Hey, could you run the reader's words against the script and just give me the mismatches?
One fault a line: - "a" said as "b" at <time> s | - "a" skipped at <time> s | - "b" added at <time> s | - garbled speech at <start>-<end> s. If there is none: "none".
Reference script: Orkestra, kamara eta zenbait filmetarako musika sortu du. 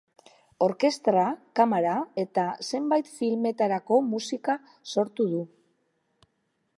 none